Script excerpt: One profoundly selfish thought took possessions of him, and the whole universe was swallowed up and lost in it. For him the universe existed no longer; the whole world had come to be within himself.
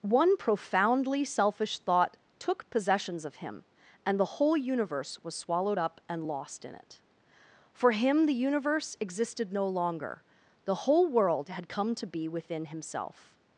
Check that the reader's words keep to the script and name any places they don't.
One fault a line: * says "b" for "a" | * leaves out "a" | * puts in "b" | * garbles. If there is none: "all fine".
all fine